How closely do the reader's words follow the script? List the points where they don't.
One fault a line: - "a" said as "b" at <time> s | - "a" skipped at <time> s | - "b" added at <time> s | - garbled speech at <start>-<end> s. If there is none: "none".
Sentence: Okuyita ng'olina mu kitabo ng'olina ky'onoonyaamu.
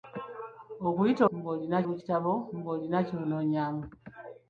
none